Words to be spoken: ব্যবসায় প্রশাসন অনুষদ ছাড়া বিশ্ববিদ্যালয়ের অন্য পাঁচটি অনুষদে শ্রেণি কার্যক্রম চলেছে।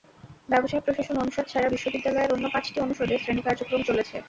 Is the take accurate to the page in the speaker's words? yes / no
yes